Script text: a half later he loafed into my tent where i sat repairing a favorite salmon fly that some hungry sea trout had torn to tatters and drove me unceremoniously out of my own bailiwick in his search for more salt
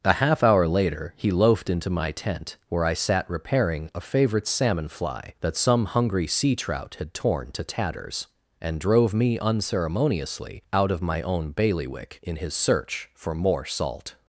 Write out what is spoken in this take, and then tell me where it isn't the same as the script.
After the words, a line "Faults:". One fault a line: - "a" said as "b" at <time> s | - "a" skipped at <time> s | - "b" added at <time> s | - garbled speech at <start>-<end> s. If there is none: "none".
a half hour later he loafed into my tent where i sat repairing a favorite salmon fly that some hungry sea trout had torn to tatters and drove me unceremoniously out of my own bailiwick in his search for more salt
Faults:
- "hour" added at 0.4 s